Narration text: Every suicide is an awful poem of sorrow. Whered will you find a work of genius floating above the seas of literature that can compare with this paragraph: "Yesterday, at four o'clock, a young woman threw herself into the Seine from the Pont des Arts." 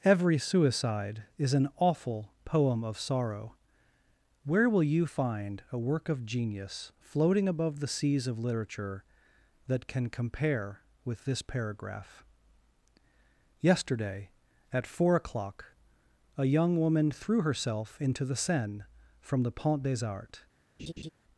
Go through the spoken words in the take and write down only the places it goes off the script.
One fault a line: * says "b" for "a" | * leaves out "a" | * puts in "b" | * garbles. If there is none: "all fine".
* says "Where" for "Whered"